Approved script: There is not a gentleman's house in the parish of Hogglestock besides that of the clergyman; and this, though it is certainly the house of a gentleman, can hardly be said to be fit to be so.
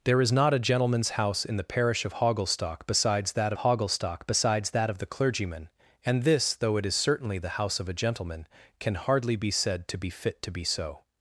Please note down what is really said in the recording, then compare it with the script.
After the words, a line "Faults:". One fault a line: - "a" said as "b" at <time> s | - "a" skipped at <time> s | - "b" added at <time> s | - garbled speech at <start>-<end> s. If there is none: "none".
There is not a gentleman's house in the parish of Hogglestock besides that Hogglestock besides that of the clergyman; and this, though it is certainly the house of a gentleman, can hardly be said to be fit to be so.
Faults:
- "Hogglestock besides that" added at 3.6 s